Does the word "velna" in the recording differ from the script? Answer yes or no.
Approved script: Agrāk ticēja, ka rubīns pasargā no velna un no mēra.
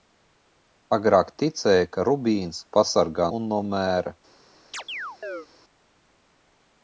yes